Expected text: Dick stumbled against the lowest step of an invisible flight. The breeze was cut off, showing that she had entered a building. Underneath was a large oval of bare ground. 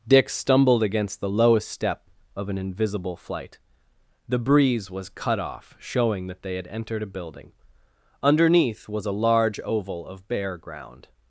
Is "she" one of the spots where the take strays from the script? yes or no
yes